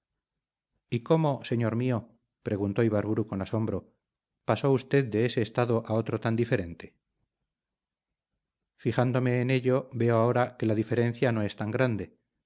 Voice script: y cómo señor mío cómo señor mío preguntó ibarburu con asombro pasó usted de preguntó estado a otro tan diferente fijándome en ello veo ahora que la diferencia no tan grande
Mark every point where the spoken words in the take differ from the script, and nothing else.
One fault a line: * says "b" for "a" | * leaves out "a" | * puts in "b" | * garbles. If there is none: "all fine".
* leaves out "cómo señor mío"
* says "ese" for "preguntó"
* puts in "es"